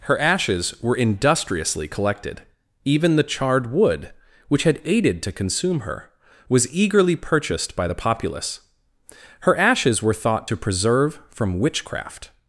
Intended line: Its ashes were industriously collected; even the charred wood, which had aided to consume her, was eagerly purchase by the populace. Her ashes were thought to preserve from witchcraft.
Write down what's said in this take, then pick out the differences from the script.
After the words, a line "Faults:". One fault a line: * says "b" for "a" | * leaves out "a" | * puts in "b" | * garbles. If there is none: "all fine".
Her ashes were industriously collected; even the charred wood, which had aided to consume her, was eagerly purchased by the populace. Her ashes were thought to preserve from witchcraft.
Faults:
* says "Her" for "Its"
* says "purchased" for "purchase"